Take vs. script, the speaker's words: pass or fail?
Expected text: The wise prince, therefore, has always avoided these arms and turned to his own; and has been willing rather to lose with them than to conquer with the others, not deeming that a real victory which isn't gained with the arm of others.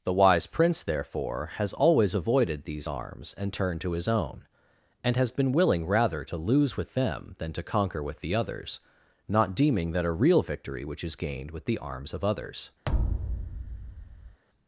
fail